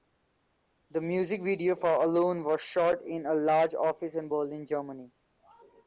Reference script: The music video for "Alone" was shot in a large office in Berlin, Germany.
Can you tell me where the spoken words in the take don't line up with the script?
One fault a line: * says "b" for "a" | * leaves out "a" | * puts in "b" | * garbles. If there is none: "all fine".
all fine